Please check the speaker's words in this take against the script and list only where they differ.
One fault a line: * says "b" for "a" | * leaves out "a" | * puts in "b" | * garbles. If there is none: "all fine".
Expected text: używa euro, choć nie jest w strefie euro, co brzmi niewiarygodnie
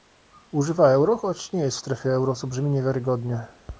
all fine